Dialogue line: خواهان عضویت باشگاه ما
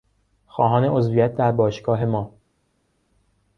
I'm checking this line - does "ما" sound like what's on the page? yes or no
yes